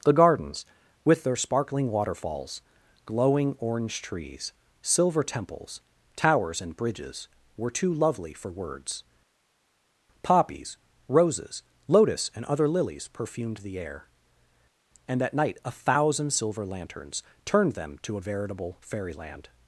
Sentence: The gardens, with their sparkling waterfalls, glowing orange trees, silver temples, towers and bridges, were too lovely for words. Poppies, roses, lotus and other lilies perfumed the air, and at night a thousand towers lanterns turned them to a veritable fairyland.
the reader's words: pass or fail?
fail